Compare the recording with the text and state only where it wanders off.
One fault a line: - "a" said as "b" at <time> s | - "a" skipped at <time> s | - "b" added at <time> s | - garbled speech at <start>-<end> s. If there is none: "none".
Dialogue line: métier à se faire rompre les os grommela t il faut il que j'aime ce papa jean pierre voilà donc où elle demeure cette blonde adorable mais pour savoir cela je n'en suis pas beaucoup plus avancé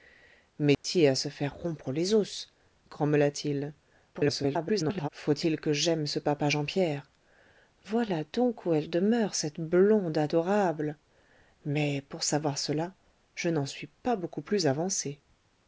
- garbled speech at 4.1-5.1 s